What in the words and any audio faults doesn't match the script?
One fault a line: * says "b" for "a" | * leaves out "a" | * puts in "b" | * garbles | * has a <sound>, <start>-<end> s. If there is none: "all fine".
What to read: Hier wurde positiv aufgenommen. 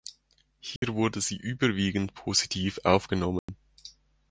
* has a dropout, 0.8-0.8 s
* puts in "sie überwiegend"
* has a dropout, 3.4-3.5 s